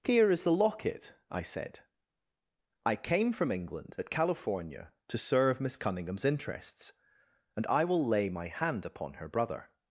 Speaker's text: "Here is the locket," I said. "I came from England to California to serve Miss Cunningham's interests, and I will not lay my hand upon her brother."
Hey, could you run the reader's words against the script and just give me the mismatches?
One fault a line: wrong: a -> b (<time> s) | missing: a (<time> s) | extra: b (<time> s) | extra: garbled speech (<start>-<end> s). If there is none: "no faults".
wrong: to -> at (4.0 s)
missing: not (8.1 s)